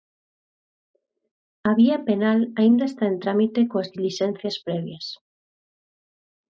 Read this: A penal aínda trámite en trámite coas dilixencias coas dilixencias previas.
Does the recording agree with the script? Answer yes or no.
no